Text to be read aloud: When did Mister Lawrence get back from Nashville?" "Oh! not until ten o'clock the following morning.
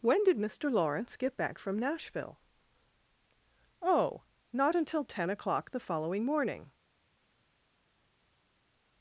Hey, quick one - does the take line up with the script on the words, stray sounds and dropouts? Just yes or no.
yes